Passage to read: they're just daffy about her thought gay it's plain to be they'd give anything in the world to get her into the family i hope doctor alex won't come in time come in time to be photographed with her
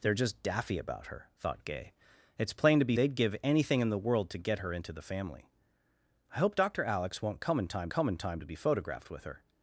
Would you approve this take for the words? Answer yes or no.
yes